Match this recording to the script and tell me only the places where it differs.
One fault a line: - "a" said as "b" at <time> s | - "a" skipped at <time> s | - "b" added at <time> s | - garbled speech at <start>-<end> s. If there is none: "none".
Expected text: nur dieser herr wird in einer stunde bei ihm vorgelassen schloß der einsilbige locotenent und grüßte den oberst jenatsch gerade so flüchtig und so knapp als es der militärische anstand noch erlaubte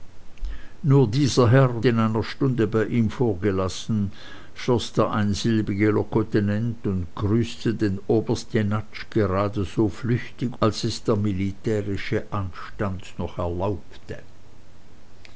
- "wird" skipped at 1.9 s
- "und so knapp" skipped at 10.6 s